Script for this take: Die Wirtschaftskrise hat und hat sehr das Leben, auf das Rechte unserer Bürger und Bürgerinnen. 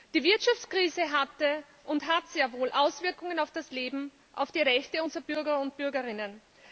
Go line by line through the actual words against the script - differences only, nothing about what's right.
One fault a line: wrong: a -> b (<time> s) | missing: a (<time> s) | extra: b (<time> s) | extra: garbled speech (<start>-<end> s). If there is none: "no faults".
wrong: hat -> hatte (1.1 s)
extra: wohl Auswirkungen auf (2.5 s)
wrong: das -> die (4.5 s)